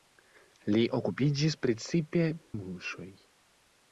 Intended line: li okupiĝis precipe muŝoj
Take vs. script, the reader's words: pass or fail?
pass